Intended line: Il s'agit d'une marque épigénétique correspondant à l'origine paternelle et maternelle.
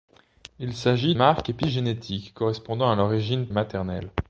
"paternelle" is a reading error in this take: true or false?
true